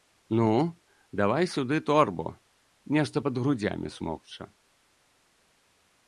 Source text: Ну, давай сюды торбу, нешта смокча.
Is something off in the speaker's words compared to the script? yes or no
yes